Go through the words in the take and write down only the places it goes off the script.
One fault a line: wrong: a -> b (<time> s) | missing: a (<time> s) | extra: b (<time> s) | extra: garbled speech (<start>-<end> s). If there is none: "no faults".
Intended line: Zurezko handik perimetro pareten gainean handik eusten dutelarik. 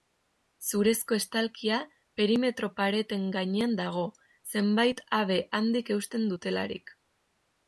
wrong: handik -> estalkia (1.2 s)
extra: dago zenbait habe (3.8 s)